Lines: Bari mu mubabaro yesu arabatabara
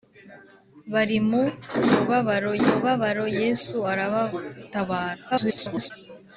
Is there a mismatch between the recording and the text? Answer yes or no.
yes